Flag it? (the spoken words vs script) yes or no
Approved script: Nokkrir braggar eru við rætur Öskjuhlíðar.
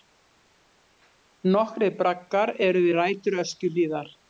no